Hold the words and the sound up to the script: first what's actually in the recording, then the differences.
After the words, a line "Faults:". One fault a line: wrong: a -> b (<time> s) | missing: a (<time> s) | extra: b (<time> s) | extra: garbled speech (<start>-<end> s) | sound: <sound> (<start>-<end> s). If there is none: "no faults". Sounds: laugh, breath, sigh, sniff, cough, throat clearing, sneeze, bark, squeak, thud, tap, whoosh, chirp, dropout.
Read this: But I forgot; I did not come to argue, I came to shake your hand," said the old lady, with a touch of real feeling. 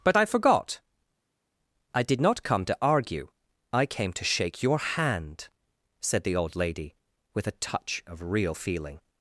But I forgot; I did not come to argue, I came to shake your hand," said the old lady, with a touch of real feeling.
Faults:
no faults